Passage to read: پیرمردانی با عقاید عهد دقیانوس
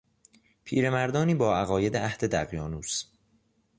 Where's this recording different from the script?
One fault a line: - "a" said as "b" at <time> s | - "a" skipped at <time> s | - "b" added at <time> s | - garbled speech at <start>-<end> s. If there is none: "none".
none